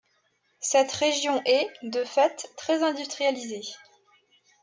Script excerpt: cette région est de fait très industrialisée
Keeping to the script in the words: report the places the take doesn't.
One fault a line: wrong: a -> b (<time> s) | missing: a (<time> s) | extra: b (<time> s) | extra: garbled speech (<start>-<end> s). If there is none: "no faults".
no faults